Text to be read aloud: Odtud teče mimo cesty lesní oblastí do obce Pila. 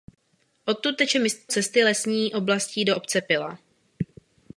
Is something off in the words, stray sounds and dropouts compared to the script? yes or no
yes